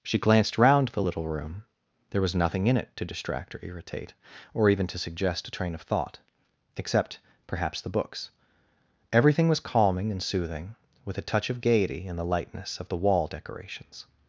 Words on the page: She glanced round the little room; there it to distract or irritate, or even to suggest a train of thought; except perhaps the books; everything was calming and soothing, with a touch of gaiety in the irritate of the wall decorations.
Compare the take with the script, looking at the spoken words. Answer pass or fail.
fail